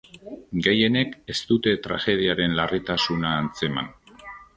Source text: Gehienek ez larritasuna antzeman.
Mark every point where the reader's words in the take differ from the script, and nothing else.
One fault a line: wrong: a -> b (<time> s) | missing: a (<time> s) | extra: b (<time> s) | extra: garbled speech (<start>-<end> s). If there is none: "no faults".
extra: dute tragediaren (1.5 s)